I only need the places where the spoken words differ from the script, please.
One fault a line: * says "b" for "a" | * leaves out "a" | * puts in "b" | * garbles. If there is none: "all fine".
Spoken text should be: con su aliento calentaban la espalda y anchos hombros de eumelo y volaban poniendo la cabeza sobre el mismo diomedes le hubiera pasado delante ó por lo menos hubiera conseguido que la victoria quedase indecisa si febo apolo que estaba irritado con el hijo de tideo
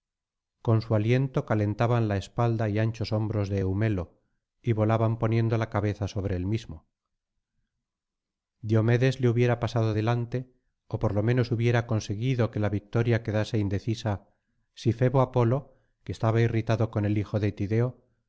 all fine